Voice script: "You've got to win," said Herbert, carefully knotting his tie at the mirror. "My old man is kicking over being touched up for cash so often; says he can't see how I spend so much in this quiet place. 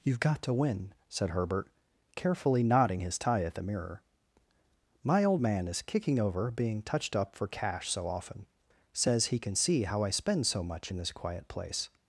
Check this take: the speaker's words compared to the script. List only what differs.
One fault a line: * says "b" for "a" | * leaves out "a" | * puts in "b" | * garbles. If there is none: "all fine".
* says "can" for "can't"